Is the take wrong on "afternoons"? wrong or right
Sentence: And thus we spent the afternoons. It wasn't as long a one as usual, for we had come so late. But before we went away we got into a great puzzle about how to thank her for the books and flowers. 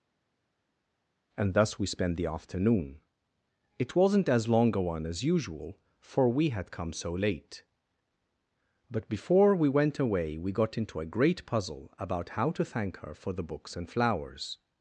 wrong